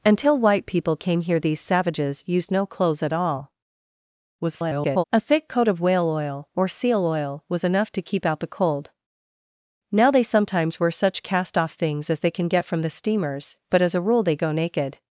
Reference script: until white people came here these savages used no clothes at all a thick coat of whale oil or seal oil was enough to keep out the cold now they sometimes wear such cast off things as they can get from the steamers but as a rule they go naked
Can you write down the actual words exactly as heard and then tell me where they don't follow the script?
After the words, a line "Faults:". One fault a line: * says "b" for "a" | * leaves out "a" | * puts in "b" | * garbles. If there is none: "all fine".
until white people came here these savages used no clothes at all [garbled] a thick coat of whale oil or seal oil was enough to keep out the cold now they sometimes wear such cast off things as they can get from the steamers but as a rule they go naked
Faults:
* garbles